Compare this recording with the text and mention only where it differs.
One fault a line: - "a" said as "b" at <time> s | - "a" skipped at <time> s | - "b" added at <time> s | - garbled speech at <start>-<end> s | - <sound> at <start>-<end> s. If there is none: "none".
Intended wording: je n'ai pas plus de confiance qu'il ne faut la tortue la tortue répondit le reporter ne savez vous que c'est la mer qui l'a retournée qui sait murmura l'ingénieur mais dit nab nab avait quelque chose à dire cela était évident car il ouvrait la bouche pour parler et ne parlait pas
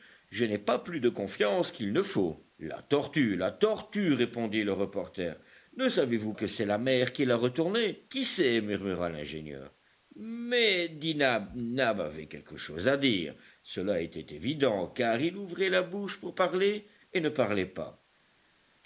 none